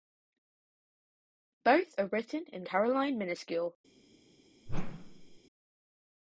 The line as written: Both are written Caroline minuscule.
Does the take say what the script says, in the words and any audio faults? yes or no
no